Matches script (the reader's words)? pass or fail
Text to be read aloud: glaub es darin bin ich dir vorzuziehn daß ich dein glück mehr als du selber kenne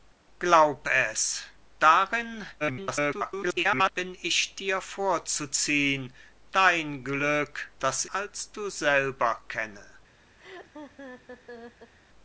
fail